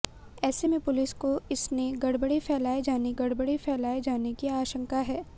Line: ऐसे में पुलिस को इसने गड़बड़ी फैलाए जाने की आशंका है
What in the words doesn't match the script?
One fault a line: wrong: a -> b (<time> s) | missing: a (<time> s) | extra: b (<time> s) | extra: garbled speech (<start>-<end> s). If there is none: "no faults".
extra: गड़बड़ी फैलाए जाने (3.2 s)